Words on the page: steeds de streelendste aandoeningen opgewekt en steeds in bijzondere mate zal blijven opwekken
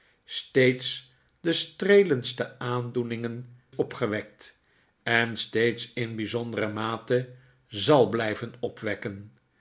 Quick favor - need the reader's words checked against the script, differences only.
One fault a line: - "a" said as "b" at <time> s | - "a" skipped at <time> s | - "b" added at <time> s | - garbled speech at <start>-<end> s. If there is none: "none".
none